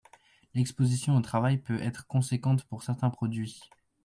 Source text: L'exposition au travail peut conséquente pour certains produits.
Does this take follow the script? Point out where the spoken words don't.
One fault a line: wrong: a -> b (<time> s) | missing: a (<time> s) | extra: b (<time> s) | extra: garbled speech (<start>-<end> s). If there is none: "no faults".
extra: être (1.8 s)